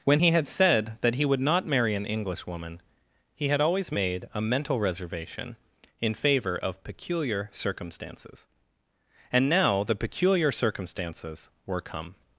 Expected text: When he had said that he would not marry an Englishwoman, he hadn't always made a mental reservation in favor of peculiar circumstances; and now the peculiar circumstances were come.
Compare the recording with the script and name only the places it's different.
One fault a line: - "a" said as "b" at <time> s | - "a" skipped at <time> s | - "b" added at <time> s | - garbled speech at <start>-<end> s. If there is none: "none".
- "hadn't" said as "had" at 3.5 s